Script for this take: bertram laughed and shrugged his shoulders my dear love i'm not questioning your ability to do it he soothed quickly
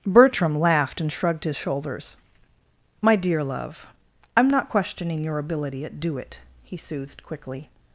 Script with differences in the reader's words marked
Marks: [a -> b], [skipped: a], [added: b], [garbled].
bertram laughed and shrugged his shoulders my dear love i'm not questioning your ability [to -> at] do it he soothed quickly